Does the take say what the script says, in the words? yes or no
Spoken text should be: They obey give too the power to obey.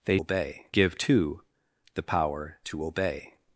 yes